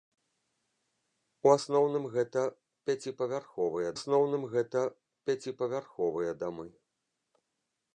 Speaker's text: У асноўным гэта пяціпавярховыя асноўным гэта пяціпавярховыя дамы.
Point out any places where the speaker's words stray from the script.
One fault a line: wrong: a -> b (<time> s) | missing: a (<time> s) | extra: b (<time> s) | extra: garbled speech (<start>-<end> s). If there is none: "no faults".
no faults